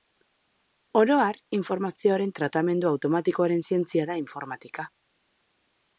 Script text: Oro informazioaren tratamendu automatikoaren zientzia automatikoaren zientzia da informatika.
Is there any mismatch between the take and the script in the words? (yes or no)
yes